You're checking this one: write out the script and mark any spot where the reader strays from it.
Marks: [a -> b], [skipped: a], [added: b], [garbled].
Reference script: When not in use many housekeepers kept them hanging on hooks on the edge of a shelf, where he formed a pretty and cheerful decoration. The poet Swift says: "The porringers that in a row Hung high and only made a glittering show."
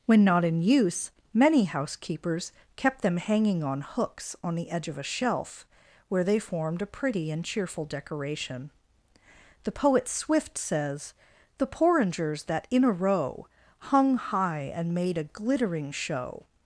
When not in use many housekeepers kept them hanging on hooks on the edge of a shelf, where [he -> they] formed a pretty and cheerful decoration. The poet Swift says: "The porringers that in a row Hung high and [skipped: only] made a glittering show."